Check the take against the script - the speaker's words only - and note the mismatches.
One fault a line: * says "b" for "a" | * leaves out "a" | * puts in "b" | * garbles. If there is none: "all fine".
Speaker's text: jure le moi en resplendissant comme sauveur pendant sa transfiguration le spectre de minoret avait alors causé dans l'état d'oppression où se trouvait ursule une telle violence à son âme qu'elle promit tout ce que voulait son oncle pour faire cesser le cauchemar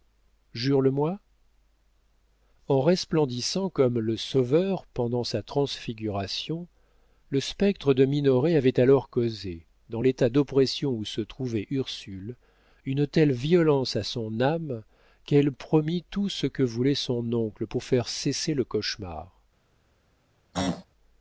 * puts in "le"